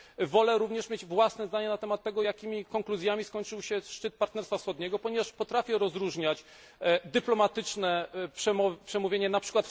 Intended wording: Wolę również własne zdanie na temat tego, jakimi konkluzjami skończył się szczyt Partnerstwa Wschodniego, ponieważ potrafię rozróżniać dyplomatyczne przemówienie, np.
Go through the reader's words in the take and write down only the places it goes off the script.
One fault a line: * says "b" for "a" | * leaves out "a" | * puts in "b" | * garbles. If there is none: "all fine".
* puts in "mieć"